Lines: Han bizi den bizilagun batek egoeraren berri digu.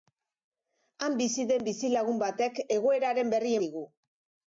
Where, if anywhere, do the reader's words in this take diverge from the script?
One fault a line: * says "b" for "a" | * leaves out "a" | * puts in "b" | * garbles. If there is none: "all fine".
all fine